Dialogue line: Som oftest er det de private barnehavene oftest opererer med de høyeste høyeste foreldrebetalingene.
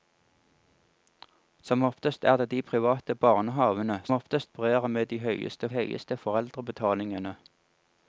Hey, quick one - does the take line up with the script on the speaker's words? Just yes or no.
yes